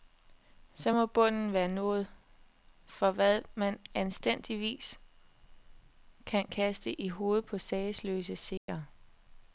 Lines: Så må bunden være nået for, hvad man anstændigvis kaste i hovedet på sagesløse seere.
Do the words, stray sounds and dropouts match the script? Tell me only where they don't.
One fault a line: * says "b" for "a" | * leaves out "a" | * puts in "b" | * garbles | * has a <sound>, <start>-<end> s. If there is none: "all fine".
* puts in "kan"
* has a dropout, 8.6-8.7 s